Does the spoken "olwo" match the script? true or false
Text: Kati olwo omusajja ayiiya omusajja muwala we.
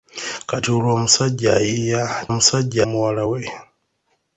true